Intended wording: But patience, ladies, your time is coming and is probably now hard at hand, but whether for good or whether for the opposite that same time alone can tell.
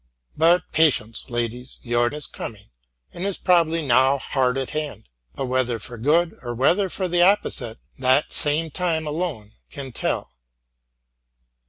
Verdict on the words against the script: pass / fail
fail